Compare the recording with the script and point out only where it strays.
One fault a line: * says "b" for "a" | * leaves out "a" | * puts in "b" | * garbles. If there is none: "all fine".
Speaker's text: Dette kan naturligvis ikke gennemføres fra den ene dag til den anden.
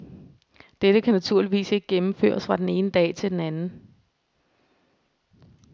all fine